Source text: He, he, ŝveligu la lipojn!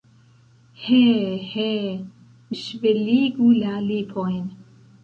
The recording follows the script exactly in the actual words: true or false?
true